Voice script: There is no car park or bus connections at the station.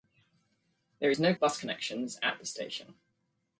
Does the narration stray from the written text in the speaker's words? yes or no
yes